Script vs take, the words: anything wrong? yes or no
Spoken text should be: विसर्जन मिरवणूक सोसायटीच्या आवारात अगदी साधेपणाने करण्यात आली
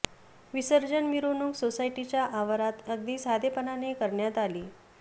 no